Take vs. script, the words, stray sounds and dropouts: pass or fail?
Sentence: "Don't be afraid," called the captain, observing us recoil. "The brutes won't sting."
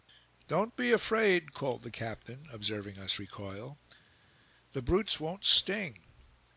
pass